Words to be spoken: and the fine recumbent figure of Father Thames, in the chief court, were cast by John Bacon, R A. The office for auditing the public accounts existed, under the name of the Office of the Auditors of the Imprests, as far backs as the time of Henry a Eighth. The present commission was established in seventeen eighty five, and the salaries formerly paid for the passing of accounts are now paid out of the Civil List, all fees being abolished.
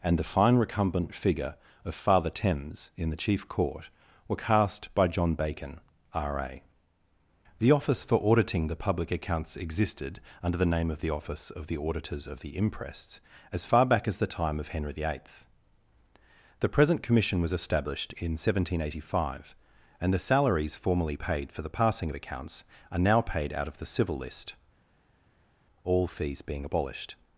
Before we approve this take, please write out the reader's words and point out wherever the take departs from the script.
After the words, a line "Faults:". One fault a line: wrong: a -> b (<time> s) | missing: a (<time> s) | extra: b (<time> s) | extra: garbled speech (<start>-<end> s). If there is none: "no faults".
and the fine recumbent figure of Father Thames, in the chief court, were cast by John Bacon, R A. The office for auditing the public accounts existed, under the name of the Office of the Auditors of the Imprests, as far back as the time of Henry the Eighth. The present commission was established in seventeen eighty five, and the salaries formerly paid for the passing of accounts are now paid out of the Civil List, all fees being abolished.
Faults:
wrong: backs -> back (13.8 s)
wrong: a -> the (14.9 s)